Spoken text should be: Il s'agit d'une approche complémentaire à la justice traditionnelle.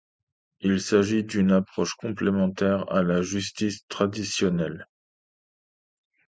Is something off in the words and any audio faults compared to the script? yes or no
no